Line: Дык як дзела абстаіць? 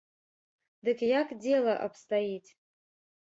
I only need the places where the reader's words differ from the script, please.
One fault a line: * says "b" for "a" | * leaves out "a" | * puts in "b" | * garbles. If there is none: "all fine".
all fine